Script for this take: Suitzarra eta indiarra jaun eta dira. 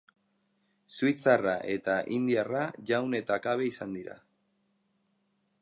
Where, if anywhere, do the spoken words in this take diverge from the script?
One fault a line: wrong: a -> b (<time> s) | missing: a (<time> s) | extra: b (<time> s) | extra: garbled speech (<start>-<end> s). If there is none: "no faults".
extra: kabe izan (3.5 s)